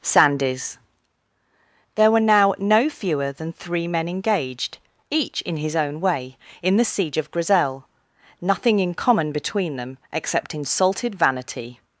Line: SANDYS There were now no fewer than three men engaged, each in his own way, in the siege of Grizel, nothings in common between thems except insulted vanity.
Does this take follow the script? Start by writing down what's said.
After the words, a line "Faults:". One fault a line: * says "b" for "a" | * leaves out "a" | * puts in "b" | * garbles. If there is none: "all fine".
SANDYS There were now no fewer than three men engaged, each in his own way, in the siege of Grizel, nothing in common between them except insulted vanity.
Faults:
* says "nothing" for "nothings"
* says "them" for "thems"